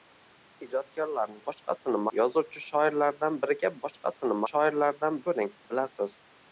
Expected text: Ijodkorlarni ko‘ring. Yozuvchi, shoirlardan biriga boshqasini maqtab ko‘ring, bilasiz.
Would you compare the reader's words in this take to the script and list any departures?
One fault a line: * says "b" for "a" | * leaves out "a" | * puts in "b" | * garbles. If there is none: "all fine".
* says "boshqasini" for "ko‘ring"
* says "shoirlardan" for "maqtab"